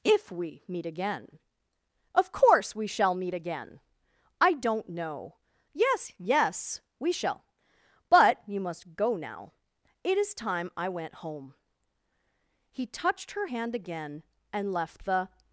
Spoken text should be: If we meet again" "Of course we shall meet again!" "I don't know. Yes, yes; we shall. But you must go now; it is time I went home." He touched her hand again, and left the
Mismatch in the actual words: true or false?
false